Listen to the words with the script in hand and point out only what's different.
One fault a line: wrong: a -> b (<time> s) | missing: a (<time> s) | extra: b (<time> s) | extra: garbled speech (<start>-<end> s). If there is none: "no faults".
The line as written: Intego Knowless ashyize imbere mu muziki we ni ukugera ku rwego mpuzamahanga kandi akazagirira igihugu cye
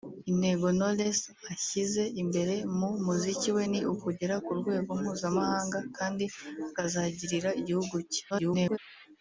extra: garbled speech (8.3-8.8 s)